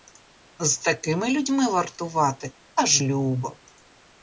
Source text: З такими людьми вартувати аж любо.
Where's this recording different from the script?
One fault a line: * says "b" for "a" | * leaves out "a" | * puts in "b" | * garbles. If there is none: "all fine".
all fine